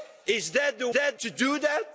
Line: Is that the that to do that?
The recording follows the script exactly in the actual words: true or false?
true